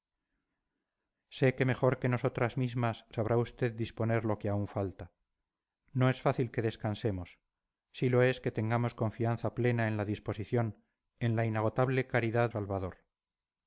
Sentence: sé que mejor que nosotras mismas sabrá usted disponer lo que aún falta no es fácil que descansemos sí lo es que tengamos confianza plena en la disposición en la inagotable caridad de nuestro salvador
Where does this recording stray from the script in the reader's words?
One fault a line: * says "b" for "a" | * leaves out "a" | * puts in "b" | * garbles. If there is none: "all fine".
* leaves out "de nuestro"